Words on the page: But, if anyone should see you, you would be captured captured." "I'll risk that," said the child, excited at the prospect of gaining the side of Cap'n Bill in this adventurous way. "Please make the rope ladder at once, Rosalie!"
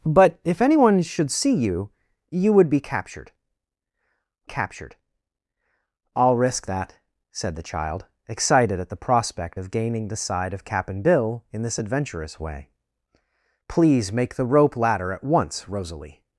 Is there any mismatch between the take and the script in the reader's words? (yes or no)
no